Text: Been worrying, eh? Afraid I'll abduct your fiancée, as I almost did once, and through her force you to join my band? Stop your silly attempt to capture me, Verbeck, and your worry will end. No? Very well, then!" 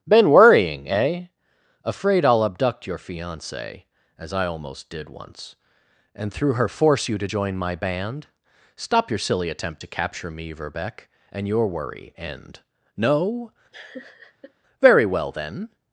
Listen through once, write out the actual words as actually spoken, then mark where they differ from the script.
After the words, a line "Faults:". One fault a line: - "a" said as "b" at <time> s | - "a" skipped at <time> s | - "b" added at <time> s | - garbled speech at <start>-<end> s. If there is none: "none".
Been worrying, eh? Afraid I'll abduct your fiancée, as I almost did once, and through her force you to join my band? Stop your silly attempt to capture me, Verbeck, and your worry end. No? Very well, then!"
Faults:
- "will" skipped at 12.1 s